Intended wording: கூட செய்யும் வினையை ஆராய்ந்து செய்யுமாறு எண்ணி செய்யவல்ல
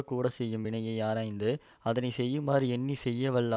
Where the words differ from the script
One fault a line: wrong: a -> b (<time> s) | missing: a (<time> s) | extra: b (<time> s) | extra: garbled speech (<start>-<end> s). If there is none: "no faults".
extra: அதனை (1.8 s)